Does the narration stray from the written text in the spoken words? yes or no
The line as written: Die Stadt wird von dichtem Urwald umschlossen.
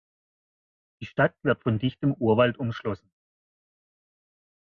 no